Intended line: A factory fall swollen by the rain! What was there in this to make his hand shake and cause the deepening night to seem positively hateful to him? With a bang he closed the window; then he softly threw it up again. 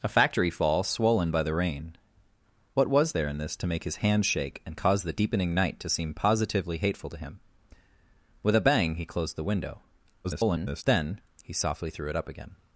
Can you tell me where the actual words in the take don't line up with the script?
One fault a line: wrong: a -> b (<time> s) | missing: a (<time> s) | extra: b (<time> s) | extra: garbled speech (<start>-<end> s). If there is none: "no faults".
extra: garbled speech (10.2-10.8 s)